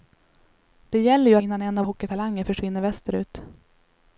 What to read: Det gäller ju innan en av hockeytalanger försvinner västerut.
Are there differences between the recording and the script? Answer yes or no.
no